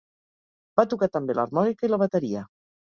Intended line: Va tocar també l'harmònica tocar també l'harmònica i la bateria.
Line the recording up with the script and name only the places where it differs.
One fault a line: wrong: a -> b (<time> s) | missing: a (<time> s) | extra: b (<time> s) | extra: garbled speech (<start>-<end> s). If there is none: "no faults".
missing: tocar també l'harmònica (1.9 s)